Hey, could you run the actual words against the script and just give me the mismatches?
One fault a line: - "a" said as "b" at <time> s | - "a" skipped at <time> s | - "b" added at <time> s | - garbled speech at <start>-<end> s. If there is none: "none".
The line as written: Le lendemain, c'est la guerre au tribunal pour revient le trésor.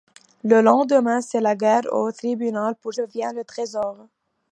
none